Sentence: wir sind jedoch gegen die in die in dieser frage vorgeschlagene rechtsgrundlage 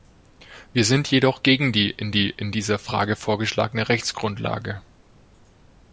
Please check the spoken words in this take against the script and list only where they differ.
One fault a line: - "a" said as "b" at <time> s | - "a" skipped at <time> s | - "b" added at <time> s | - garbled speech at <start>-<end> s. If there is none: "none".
none